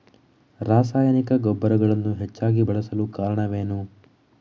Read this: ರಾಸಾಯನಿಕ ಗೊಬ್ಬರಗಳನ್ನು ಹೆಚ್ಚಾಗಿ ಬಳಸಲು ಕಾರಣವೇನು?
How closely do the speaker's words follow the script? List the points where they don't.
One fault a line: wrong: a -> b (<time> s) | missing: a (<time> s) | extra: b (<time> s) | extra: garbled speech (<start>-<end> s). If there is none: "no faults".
no faults